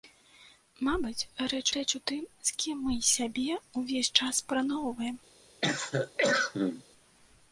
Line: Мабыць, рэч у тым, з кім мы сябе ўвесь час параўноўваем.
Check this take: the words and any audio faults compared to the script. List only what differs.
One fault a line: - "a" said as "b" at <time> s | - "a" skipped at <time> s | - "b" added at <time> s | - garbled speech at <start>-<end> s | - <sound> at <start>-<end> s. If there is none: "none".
- "рэч" added at 1.7 s
- cough at 5.6-6.8 s